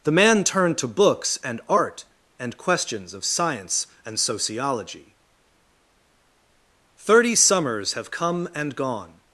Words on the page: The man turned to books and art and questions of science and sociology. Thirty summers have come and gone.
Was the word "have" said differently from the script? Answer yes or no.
no